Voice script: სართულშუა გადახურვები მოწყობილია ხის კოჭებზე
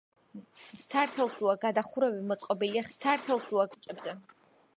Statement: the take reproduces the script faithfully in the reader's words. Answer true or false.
false